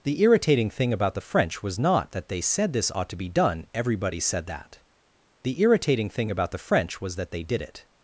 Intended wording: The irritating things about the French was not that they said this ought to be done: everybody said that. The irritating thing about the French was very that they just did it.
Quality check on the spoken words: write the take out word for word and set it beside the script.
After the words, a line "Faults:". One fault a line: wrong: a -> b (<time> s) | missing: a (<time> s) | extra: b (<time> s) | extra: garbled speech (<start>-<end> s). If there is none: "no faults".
The irritating thing about the French was not that they said this ought to be done: everybody said that. The irritating thing about the French was that they did it.
Faults:
wrong: things -> thing (0.7 s)
missing: very (7.2 s)
missing: just (7.4 s)